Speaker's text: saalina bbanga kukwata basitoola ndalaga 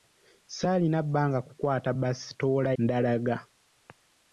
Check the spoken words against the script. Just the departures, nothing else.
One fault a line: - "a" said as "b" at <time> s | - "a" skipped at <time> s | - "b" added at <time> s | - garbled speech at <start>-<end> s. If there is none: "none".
none